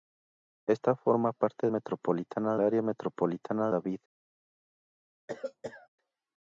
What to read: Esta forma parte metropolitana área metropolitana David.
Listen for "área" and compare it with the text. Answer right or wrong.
right